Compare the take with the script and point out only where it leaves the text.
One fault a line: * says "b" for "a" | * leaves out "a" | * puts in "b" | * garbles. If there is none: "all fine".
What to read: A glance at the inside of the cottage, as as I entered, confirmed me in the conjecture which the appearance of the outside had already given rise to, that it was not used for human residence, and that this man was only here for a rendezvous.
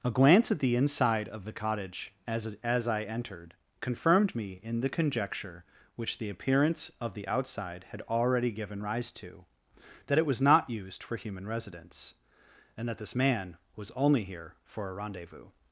all fine